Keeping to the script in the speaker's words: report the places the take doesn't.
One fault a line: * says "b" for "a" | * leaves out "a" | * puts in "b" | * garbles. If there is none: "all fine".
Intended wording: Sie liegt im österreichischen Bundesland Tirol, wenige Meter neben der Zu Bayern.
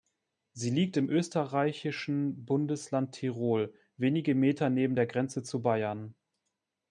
* puts in "Grenze"